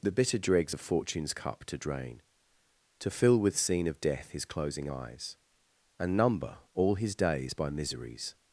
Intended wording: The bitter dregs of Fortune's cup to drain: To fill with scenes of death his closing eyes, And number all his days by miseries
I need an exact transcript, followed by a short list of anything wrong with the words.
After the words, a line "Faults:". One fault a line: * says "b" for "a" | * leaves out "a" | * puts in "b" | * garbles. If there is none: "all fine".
The bitter dregs of Fortune's cup to drain: To fill with scene of death his closing eyes, And number all his days by miseries
Faults:
* says "scene" for "scenes"